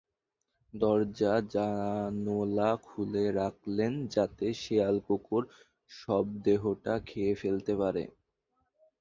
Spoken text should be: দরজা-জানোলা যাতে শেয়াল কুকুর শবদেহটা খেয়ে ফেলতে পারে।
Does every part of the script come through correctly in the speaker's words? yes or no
no